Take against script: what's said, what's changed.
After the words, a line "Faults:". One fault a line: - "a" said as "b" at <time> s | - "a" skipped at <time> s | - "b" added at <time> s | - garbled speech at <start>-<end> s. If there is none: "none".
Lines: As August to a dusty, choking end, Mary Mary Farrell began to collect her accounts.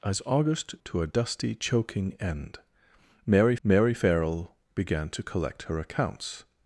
As August to a dusty, choking end, Mary Mary Farrell began to collect her accounts.
Faults:
none